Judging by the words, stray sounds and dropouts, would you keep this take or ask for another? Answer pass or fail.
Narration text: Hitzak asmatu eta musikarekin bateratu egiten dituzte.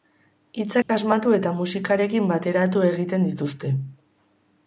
fail